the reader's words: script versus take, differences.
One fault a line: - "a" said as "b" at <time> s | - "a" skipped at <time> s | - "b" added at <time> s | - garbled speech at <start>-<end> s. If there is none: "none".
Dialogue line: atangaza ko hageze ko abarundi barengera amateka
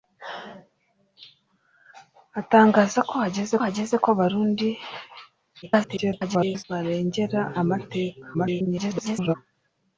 - "hageze" added at 3.6 s
- garbled speech at 5.6-6.6 s
- garbled speech at 8.3-9.4 s